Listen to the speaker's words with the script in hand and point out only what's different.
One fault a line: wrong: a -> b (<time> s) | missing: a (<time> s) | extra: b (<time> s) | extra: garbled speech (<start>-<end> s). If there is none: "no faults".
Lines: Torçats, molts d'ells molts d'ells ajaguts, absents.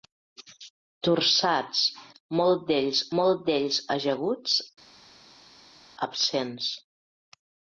no faults